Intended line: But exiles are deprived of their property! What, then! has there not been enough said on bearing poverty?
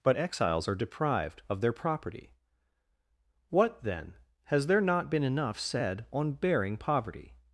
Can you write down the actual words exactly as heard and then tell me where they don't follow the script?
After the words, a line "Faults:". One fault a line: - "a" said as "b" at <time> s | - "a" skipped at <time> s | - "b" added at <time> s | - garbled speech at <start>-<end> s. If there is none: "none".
But exiles are deprived of their property! What, then! has there not been enough said on bearing poverty?
Faults:
none